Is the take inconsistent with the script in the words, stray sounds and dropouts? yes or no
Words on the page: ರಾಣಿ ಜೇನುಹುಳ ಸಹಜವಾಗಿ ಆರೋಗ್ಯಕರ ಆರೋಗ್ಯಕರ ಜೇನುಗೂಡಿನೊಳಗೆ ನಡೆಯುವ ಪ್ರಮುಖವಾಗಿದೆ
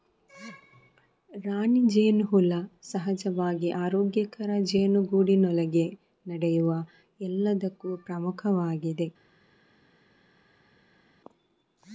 yes